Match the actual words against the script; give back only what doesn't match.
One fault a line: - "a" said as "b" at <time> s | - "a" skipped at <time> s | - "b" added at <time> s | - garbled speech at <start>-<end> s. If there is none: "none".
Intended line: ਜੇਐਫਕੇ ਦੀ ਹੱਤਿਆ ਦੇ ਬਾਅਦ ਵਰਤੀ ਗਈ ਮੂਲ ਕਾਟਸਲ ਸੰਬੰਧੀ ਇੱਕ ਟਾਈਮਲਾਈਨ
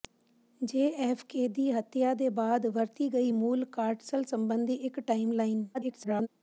- garbled speech at 5.7-6.3 s